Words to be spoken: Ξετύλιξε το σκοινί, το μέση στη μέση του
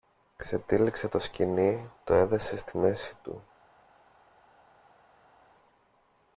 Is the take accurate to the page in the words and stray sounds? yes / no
no